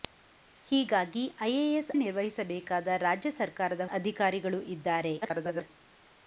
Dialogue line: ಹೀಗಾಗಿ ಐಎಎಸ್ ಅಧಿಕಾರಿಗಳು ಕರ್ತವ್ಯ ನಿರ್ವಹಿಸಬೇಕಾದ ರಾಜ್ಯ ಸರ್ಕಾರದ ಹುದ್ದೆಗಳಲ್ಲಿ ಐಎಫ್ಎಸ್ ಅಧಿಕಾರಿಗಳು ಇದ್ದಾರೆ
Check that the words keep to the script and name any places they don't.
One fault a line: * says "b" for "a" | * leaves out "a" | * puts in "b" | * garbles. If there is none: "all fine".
* leaves out "ಅಧಿಕಾರಿಗಳು ಕರ್ತವ್ಯ"
* leaves out "ಹುದ್ದೆಗಳಲ್ಲಿ ಐಎಫ್ಎಸ್"
* garbles